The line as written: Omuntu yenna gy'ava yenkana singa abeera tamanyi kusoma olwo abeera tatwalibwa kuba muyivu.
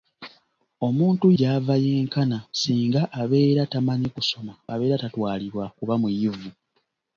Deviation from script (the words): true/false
true